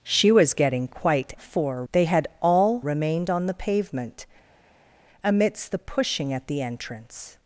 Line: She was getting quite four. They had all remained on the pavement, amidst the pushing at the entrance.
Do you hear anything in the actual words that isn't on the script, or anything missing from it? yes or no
no